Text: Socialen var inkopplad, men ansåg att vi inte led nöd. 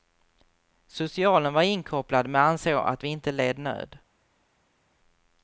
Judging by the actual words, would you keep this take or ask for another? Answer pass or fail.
pass